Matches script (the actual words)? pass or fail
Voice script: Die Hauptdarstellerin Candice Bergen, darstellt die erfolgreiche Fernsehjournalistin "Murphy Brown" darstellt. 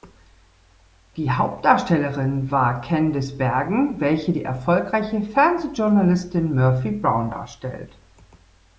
fail